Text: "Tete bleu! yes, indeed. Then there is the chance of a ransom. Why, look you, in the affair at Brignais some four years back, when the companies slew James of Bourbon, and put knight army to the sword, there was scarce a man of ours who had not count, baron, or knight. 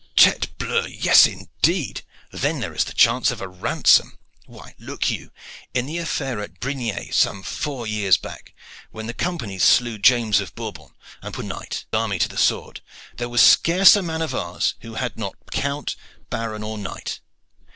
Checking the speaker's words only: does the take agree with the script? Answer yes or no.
yes